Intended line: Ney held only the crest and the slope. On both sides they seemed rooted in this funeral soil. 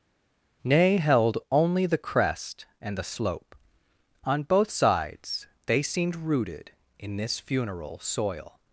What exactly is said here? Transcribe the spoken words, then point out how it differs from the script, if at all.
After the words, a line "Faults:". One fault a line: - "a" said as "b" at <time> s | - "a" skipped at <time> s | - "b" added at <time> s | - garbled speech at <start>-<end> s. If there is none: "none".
Ney held only the crest and the slope. On both sides they seemed rooted in this funeral soil.
Faults:
none